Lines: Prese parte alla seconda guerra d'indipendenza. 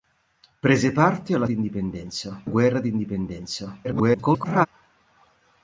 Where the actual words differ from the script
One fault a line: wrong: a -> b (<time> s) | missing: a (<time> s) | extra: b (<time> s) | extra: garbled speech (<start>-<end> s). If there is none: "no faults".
wrong: seconda -> d'indipendenza (1.5 s)
extra: garbled speech (3.8-4.7 s)